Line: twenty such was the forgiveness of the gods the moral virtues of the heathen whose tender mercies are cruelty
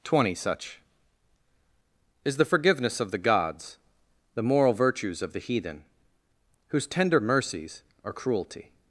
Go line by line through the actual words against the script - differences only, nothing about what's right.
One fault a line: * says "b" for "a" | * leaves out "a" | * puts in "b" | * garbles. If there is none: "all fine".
* says "is" for "was"